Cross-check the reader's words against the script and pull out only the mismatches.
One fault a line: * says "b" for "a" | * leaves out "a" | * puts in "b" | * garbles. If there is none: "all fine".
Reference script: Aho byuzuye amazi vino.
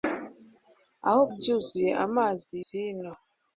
all fine